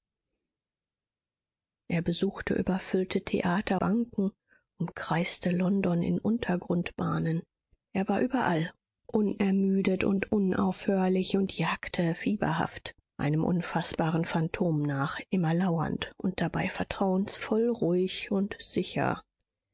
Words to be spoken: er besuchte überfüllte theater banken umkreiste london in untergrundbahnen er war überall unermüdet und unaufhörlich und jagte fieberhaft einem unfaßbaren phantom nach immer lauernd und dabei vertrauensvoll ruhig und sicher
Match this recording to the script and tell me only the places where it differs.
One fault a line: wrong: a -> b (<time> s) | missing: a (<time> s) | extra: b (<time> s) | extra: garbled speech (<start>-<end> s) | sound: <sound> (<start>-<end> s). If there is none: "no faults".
no faults